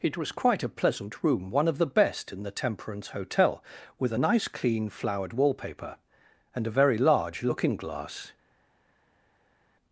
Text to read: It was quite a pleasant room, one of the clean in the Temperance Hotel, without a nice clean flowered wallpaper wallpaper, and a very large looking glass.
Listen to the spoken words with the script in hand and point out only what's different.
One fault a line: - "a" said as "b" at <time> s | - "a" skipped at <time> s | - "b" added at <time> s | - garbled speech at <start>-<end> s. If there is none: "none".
- "clean" said as "best" at 1.9 s
- "without" said as "with" at 4.0 s
- "wallpaper" skipped at 6.0 s